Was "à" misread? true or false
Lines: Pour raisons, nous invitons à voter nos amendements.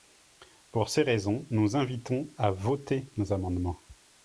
false